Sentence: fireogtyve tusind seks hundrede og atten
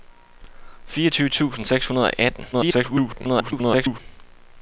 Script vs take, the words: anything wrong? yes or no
yes